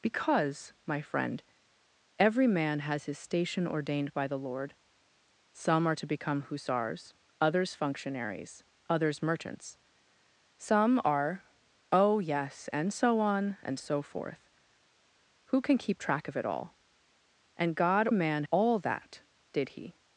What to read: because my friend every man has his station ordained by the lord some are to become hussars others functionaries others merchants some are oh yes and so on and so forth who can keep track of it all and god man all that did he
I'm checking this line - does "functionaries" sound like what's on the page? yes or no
yes